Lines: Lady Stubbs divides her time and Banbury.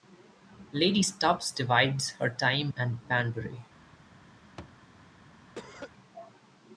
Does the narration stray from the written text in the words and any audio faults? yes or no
yes